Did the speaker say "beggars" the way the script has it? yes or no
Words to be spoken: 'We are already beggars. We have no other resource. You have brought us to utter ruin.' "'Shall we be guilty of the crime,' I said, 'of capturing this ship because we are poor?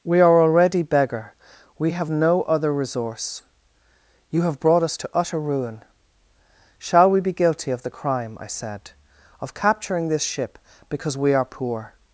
no